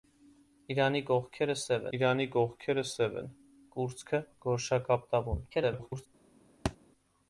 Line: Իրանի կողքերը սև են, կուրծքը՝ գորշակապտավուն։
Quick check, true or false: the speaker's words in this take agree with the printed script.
false